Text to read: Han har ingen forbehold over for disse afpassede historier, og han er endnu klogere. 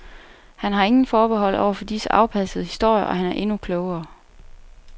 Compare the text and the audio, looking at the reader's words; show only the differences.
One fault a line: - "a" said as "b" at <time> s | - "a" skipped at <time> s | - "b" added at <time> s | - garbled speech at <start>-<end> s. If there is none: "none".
none